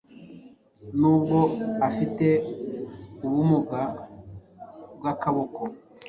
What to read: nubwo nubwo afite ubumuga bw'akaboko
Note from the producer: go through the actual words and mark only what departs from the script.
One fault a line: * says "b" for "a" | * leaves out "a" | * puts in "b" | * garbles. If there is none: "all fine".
* leaves out "nubwo"